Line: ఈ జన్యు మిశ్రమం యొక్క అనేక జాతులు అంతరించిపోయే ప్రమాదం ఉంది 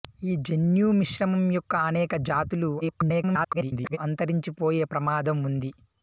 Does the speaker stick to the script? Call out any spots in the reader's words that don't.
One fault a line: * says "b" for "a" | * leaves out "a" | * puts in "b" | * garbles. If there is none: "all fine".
* garbles